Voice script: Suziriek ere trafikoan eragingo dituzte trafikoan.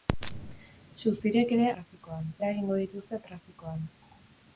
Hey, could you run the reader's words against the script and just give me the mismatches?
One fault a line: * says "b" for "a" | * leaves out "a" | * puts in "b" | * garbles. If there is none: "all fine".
all fine